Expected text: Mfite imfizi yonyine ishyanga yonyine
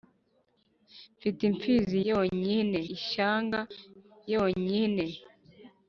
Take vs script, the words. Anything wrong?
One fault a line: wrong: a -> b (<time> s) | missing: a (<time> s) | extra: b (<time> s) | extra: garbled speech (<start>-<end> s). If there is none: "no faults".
no faults